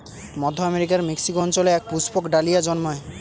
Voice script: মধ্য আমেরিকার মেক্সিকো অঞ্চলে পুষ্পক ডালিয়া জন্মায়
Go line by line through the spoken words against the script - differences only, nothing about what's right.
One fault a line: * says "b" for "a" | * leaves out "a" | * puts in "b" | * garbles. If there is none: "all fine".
* puts in "এক"